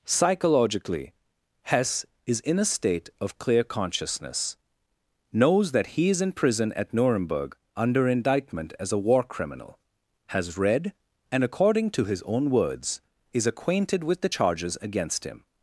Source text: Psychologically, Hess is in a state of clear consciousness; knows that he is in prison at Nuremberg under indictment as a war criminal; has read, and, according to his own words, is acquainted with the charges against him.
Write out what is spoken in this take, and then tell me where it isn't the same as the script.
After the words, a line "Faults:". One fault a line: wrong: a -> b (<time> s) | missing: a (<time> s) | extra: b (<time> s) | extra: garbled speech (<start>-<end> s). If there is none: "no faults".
Psychologically, Hess is in a state of clear consciousness; knows that he is in prison at Nuremberg under indictment as a war criminal; has read, and, according to his own words, is acquainted with the charges against him.
Faults:
no faults